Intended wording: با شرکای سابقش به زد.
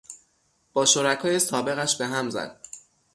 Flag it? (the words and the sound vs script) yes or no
yes